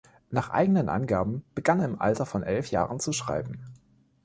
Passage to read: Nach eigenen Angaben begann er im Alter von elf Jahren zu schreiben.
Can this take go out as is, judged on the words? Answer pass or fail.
pass